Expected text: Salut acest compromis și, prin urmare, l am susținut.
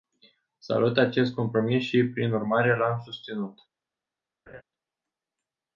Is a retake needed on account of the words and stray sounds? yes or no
yes